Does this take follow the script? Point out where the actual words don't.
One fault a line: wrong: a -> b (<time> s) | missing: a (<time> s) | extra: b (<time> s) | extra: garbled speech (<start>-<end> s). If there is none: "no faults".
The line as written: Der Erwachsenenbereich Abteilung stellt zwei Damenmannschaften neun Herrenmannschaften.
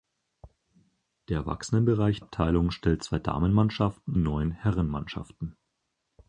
no faults